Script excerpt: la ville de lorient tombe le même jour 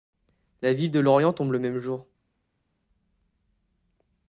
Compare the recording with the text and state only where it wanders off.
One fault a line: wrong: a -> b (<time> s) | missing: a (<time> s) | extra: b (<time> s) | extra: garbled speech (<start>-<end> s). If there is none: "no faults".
no faults